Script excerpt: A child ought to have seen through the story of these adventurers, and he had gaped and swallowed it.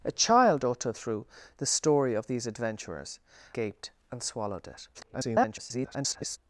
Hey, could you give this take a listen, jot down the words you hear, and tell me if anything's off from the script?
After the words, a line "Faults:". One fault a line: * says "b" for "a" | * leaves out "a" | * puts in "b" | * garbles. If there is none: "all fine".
A child ought to have through the story of these adventurers, gaped and swallowed it. [garbled]
Faults:
* leaves out "seen"
* leaves out "and he had"
* garbles